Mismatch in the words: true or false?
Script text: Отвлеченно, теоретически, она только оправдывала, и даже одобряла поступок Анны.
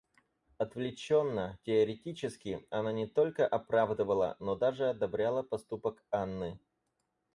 true